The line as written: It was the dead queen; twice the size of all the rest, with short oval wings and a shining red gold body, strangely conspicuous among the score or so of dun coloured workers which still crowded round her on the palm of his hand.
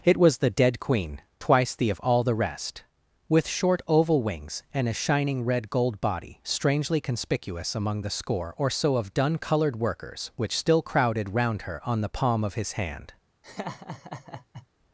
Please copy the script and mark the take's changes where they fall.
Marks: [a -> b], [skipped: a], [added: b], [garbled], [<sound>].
It was the dead queen; twice the [skipped: size] of all the rest, with short oval wings and a shining red gold body, strangely conspicuous among the score or so of dun coloured workers which still crowded round her on the palm of his hand. [laugh]